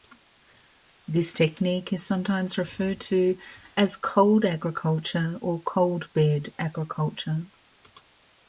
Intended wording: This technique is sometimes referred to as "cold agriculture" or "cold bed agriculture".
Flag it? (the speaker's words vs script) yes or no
no